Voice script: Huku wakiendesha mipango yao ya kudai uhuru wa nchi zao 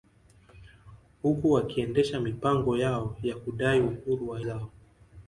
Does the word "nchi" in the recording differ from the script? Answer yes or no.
yes